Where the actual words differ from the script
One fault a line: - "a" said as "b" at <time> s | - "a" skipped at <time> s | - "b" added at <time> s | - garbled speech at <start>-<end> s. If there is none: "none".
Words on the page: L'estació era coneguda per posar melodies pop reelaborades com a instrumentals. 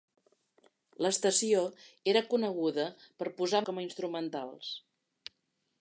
- "melodies pop reelaborades" skipped at 3.6 s